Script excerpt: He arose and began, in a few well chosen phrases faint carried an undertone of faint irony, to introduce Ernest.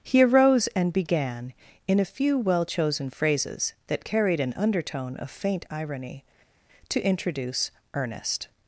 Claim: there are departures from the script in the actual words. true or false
true